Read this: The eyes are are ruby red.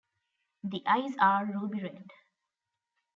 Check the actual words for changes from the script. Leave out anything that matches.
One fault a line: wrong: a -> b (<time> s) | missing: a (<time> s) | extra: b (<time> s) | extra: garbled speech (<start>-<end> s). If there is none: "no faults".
missing: are (1.4 s)